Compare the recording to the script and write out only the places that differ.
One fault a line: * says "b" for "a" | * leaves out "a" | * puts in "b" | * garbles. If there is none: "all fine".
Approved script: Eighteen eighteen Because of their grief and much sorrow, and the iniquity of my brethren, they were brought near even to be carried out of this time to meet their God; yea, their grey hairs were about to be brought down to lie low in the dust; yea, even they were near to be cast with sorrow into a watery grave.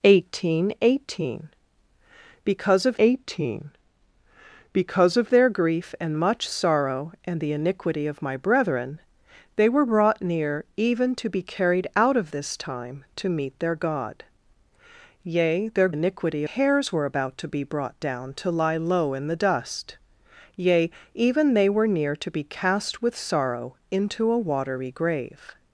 * puts in "eighteen Because of"
* says "iniquity" for "grey"